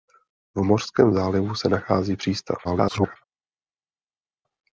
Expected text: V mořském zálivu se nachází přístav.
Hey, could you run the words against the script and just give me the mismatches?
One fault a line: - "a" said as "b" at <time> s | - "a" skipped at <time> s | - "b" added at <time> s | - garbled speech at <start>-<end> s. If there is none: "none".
- garbled speech at 2.6-3.2 s